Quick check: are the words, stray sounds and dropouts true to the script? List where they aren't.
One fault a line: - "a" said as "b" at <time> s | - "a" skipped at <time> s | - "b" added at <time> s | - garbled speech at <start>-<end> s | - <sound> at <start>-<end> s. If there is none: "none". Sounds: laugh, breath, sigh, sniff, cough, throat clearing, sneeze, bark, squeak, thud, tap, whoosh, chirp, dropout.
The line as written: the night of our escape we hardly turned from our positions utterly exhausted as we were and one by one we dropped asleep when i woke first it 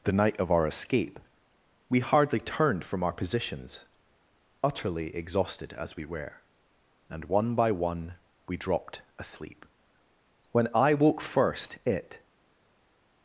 none